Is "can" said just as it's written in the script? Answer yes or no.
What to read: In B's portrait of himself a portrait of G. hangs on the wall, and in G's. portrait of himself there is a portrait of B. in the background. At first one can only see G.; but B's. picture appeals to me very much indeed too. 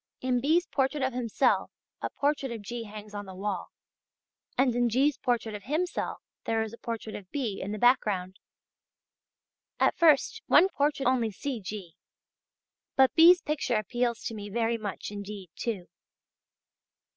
no